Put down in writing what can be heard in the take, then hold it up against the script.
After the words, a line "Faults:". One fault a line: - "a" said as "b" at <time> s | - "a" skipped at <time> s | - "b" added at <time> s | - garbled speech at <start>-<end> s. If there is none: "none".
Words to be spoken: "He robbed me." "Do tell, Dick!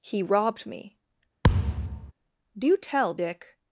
"He robbed me." "Do tell, Dick!
Faults:
none